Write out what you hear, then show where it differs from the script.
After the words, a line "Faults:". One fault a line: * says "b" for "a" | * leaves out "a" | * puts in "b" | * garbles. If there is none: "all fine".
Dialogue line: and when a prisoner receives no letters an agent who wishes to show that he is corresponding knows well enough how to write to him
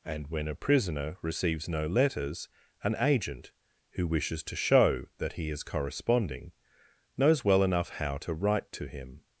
and when a prisoner receives no letters an agent who wishes to show that he is corresponding knows well enough how to write to him
Faults:
all fine